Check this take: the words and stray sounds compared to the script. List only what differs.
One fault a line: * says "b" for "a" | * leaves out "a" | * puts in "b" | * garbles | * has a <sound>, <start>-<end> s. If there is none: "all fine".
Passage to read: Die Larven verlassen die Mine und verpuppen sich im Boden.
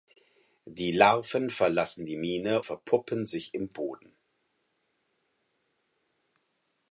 * leaves out "und"